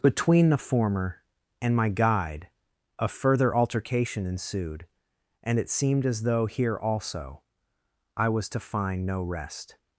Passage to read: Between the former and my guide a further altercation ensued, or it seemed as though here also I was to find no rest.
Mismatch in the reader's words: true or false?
true